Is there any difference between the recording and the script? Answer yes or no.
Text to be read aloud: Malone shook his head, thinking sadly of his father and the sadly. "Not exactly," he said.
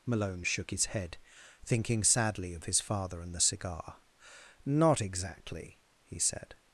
yes